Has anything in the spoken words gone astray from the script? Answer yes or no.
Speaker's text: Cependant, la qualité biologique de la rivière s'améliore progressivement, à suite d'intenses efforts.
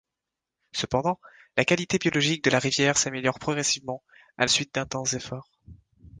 no